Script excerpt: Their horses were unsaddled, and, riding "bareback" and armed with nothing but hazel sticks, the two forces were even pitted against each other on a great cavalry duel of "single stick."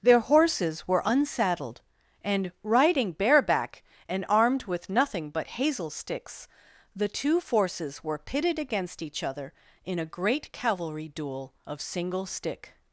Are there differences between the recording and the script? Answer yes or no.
yes